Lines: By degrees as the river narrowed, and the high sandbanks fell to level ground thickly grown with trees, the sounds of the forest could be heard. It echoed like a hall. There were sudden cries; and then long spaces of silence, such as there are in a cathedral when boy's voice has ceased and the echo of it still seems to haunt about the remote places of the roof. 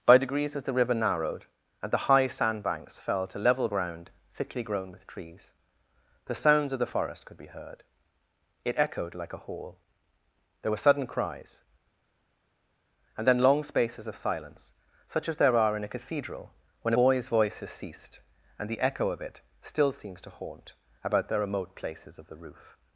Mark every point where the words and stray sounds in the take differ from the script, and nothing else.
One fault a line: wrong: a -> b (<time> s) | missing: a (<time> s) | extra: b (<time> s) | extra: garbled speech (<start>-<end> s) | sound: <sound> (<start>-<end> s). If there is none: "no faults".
no faults